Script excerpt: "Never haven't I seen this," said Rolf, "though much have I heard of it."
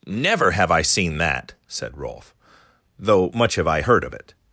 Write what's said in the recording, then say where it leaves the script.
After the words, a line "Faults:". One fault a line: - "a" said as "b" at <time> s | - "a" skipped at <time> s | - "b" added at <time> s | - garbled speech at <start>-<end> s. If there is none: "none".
"Never have I seen that," said Rolf, "though much have I heard of it."
Faults:
- "haven't" said as "have" at 0.5 s
- "this" said as "that" at 1.2 s